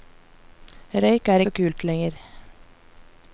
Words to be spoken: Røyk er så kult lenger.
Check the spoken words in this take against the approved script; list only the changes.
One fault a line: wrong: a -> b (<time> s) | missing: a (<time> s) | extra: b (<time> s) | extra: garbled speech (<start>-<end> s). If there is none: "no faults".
no faults